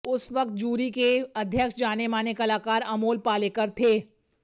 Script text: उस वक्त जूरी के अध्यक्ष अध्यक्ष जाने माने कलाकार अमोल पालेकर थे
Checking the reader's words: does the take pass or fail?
fail